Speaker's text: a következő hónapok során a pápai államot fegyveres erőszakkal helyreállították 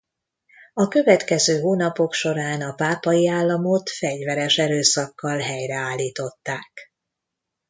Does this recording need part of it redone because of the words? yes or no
no